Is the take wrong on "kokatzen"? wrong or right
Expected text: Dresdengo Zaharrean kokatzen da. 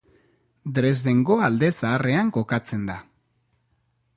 right